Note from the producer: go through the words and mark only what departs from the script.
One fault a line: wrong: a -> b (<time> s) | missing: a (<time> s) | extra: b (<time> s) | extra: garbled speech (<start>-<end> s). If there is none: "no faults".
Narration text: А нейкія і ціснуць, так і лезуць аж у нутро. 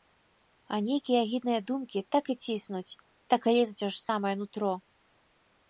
extra: агідныя думкі так (1.2 s)
extra: самае (4.1 s)